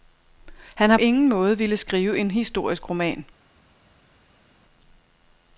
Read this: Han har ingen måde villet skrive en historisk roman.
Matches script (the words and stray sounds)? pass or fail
pass